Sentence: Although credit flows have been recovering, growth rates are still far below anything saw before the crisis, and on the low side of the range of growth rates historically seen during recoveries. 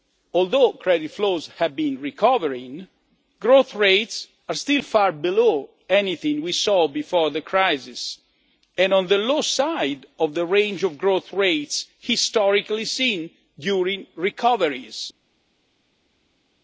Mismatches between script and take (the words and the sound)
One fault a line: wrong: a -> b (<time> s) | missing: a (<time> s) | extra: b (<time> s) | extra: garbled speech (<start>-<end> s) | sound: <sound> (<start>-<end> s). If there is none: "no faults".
extra: we (6.4 s)